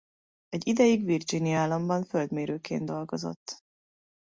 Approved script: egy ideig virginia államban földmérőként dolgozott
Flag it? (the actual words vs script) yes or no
no